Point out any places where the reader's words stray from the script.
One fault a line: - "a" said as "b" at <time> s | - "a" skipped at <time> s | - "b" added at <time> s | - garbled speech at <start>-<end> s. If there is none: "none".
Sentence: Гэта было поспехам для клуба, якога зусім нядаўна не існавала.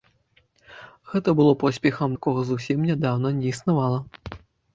- "для клуба" skipped at 2.1 s